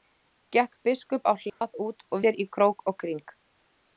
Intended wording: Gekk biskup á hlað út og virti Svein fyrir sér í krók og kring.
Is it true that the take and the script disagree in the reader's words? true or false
true